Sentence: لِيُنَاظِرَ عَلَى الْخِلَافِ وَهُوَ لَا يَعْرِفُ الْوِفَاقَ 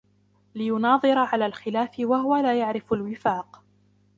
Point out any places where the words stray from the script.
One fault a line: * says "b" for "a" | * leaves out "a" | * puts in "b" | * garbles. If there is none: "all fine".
all fine